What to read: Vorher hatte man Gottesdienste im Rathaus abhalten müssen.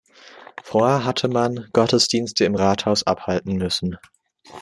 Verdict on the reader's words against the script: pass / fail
pass